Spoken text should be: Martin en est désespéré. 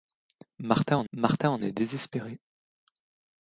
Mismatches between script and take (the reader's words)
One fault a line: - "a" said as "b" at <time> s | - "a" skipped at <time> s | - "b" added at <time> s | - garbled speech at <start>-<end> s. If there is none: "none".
- "martin en" added at 1.1 s